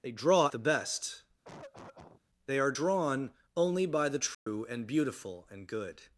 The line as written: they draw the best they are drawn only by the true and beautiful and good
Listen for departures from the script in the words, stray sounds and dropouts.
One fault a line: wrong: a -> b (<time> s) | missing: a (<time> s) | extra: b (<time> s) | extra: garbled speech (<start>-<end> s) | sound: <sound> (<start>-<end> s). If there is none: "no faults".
sound: cough (1.4-2.2 s)
sound: dropout (4.3-4.5 s)